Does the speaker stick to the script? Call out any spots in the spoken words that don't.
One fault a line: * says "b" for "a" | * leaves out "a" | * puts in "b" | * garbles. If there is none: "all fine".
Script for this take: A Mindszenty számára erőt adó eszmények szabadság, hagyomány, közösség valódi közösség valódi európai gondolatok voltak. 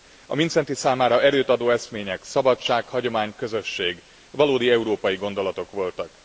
* leaves out "közösség valódi"